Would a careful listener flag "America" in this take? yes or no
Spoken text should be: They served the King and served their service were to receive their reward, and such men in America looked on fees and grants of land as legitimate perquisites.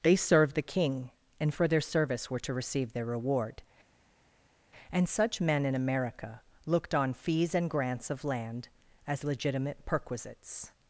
no